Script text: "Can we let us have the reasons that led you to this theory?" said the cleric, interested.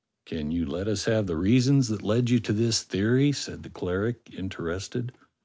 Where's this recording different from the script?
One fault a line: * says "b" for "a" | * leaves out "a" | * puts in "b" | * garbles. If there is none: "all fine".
* says "you" for "we"